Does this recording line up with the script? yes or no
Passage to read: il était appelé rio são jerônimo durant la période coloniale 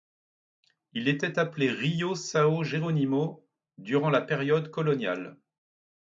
yes